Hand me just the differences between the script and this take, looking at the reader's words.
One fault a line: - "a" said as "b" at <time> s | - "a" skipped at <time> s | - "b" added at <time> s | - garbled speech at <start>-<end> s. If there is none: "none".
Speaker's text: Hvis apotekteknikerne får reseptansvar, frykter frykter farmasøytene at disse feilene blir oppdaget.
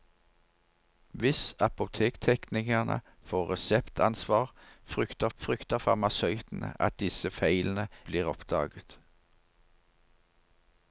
none